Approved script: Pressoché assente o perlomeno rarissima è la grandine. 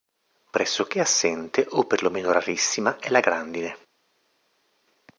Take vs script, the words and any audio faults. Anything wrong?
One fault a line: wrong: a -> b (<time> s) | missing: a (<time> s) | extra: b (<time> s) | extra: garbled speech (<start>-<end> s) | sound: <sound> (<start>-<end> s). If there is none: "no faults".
no faults